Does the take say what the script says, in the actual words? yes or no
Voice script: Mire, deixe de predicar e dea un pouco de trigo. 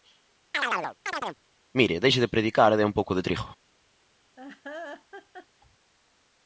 yes